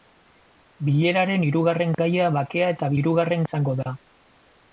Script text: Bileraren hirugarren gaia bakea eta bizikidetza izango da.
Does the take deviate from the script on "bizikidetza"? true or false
true